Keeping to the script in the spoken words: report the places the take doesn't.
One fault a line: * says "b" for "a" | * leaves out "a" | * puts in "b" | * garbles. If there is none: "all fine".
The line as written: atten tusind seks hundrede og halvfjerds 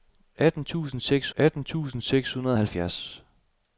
* puts in "atten tusind seks"